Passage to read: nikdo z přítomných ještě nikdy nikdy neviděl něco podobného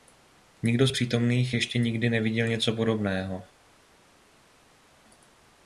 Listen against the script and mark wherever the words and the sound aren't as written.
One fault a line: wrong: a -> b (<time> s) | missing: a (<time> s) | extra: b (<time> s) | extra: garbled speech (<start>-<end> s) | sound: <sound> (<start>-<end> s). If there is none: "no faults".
missing: nikdy (2.1 s)